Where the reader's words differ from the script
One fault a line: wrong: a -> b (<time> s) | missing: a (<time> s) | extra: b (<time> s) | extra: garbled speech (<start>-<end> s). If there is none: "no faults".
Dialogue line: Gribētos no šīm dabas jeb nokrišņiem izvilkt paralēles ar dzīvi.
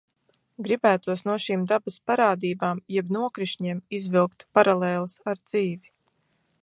extra: parādībām (2.1 s)